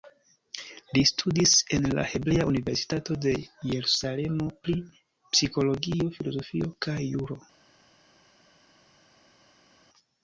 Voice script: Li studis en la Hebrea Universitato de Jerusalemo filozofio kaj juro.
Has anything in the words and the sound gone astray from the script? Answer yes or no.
yes